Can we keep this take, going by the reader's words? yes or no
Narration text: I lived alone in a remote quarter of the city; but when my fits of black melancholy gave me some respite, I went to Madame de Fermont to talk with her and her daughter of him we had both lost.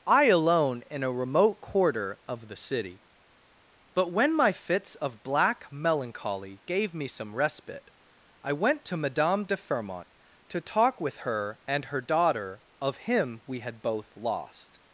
no